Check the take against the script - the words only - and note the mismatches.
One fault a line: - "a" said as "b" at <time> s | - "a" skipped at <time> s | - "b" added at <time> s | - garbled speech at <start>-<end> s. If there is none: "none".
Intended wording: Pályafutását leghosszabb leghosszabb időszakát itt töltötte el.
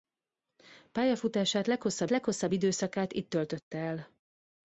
none